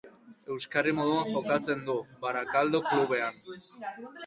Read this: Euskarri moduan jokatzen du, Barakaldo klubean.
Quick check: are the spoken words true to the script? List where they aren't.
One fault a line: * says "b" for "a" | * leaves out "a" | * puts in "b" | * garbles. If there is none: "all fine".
all fine